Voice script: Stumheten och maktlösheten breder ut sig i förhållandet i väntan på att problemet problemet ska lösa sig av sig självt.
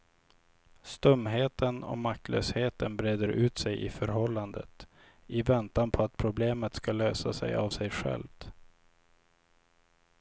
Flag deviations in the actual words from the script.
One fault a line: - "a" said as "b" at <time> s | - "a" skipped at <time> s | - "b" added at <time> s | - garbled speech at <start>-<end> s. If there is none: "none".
- "problemet" skipped at 6.7 s